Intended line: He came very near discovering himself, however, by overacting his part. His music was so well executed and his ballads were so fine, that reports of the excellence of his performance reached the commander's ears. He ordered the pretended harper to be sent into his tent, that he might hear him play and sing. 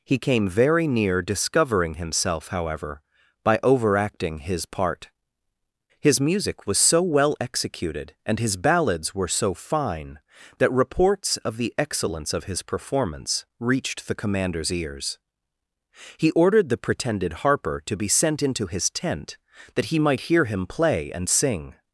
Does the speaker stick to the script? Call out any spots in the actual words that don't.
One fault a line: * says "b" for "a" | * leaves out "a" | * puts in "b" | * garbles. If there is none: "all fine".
all fine